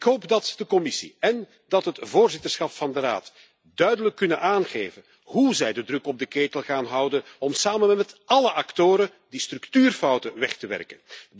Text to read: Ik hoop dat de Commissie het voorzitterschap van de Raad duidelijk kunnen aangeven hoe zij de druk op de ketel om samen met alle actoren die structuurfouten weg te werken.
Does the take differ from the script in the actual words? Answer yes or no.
yes